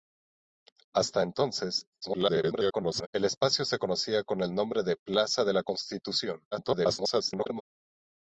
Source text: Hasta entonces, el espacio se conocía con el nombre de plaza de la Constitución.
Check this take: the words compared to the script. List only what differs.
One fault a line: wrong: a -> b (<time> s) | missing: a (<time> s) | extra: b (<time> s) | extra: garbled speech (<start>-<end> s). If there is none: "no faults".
extra: garbled speech (2.0-3.1 s)
extra: garbled speech (6.5-7.6 s)